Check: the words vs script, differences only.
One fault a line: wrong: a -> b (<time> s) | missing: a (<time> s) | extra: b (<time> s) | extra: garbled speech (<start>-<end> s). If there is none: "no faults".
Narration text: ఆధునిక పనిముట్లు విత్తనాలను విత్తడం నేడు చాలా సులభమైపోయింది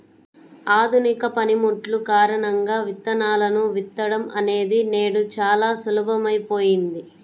extra: కారణంగా (2.1 s)
extra: అనేది (4.4 s)